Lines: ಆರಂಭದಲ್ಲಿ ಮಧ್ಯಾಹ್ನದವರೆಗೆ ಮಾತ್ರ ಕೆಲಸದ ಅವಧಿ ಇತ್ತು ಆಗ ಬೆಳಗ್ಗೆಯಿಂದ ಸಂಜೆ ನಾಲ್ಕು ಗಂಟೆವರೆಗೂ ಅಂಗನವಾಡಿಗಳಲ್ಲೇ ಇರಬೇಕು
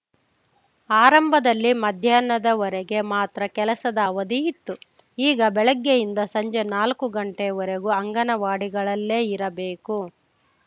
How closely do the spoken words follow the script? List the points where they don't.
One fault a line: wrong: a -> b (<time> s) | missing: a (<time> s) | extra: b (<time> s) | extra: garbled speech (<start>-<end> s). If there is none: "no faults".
wrong: ಆಗ -> ಈಗ (5.2 s)